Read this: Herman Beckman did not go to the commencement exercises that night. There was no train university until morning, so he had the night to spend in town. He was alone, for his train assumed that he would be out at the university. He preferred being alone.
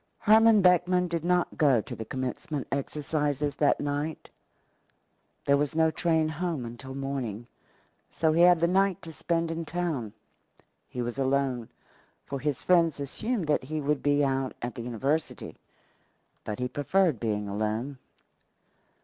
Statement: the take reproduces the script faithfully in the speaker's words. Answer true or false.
false